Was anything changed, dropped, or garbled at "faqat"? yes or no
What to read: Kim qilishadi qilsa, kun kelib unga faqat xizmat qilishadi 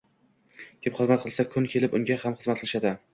yes